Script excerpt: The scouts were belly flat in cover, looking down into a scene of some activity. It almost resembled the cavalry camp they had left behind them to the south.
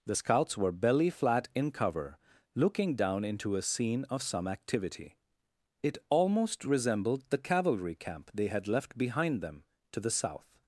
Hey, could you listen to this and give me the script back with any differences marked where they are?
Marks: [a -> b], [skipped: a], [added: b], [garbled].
The scouts were belly flat in cover, looking down into a scene of some activity. It almost resembled the cavalry camp they had left behind them to the south.